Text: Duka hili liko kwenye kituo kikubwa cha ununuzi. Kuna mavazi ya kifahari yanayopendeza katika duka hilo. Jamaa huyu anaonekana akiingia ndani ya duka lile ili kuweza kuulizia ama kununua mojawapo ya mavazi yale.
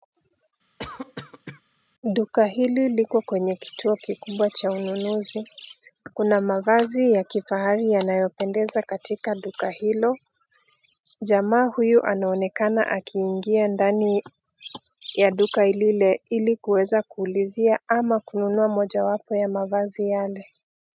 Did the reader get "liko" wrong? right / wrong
right